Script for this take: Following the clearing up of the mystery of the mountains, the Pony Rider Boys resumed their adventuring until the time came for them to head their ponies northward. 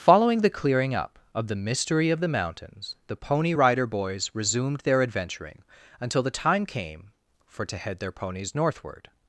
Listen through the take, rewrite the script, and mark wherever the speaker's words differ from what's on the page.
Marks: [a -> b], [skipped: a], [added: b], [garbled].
Following the clearing up of the mystery of the mountains, the Pony Rider Boys resumed their adventuring until the time came for [skipped: them] to head their ponies northward.